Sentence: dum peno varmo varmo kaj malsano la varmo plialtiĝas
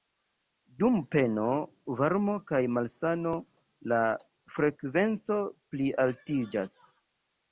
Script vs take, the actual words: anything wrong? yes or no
yes